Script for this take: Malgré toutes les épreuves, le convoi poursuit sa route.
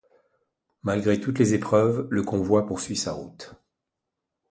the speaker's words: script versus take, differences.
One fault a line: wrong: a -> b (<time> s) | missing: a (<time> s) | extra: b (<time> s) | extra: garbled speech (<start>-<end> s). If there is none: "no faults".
no faults